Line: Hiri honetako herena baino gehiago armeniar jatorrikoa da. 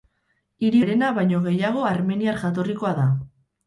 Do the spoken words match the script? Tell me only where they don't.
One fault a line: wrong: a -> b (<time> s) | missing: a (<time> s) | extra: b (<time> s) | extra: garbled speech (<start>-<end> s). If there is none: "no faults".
missing: honetako (0.8 s)